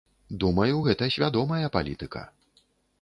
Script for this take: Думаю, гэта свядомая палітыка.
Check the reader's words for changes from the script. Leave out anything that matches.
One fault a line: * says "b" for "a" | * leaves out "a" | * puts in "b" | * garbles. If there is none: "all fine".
all fine